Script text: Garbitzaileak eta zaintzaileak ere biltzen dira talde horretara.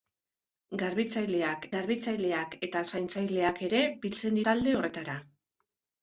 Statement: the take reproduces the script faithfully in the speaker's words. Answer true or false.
false